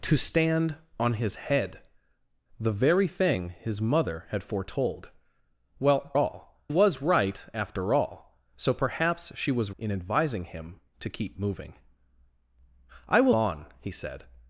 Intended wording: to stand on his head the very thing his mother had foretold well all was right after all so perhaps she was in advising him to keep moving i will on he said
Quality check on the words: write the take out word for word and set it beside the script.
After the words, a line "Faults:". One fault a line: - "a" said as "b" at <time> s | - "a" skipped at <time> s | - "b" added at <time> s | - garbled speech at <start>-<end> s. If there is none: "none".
to stand on his head the very thing his mother had foretold well all was right after all so perhaps she was in advising him to keep moving i will on he said
Faults:
none